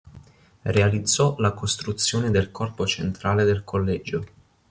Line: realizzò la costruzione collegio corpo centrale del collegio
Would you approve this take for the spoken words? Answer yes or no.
no